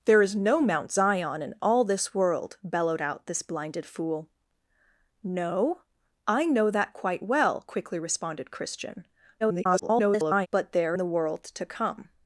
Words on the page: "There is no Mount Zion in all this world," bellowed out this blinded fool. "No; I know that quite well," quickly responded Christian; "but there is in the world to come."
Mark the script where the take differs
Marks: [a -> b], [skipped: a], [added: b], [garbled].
"There is no Mount Zion in all this world," bellowed out this blinded fool. "No; I know that quite well," quickly responded Christian; [garbled] "but there [skipped: is in] the world to come."